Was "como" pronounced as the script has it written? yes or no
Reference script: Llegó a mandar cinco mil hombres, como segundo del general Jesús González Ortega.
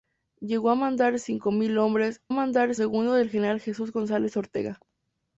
no